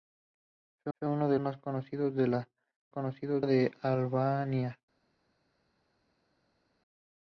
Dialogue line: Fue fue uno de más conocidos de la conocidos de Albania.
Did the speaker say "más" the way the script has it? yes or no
yes